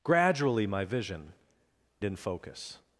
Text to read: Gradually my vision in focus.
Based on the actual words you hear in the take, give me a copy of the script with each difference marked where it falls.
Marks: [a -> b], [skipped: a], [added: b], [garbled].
Gradually my vision in focus.